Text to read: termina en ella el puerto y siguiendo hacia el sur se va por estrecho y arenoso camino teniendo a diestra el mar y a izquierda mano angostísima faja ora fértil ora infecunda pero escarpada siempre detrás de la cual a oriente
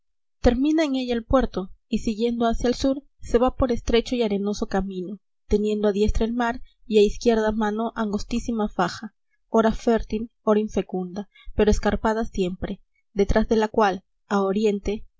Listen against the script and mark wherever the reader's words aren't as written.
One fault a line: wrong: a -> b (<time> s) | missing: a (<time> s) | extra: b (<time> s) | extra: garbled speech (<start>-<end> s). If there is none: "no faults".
no faults